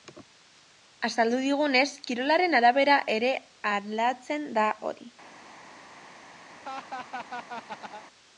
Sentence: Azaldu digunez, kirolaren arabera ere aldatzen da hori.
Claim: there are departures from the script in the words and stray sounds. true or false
true